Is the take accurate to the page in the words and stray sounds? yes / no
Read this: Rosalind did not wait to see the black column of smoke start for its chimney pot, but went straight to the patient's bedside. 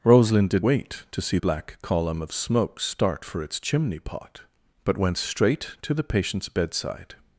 no